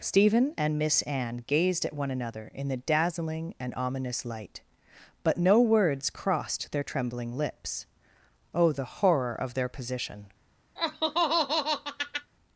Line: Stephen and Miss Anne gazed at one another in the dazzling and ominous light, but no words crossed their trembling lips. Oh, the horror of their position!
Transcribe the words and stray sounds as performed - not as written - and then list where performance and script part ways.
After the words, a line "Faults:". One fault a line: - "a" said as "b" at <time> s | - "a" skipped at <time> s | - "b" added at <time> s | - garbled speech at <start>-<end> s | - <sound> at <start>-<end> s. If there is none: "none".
Stephen and Miss Anne gazed at one another in the dazzling and ominous light, but no words crossed their trembling lips. Oh, the horror of their position!
Faults:
- laugh at 10.8-12.3 s